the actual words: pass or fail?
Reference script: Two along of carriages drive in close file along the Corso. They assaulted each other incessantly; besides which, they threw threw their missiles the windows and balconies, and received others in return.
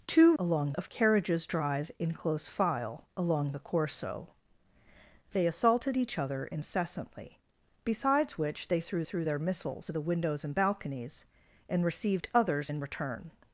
pass